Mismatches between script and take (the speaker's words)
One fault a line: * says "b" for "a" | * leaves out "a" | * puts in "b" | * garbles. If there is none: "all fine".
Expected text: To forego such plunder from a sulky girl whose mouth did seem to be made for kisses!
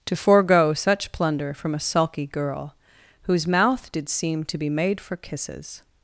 all fine